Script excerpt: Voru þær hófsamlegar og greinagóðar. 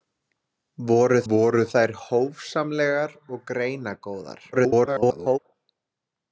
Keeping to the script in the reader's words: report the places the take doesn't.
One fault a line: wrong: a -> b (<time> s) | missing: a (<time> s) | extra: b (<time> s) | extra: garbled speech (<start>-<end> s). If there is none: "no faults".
extra: voru (1.3 s)
extra: garbled speech (4.5-5.4 s)